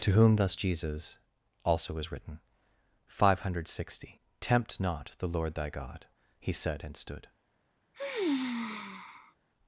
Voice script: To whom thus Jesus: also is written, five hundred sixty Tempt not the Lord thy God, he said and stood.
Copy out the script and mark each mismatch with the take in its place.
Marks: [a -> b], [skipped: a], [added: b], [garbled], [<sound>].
To whom thus Jesus: also is written, five hundred sixty Tempt not the Lord thy God, he said and stood. [sigh]